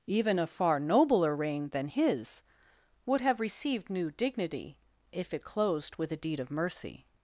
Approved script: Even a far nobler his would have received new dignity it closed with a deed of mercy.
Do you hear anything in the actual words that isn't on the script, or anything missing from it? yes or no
yes